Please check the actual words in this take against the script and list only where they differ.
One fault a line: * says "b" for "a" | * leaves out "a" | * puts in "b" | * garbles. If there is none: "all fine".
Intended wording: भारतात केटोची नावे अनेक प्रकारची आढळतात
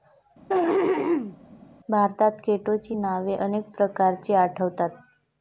all fine